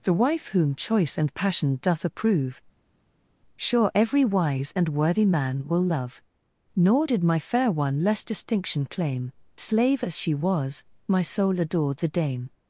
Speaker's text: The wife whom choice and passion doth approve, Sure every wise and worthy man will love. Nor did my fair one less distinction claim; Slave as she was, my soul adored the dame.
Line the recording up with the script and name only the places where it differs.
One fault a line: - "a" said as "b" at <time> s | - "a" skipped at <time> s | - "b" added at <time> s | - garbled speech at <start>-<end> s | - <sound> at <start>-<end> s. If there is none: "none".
none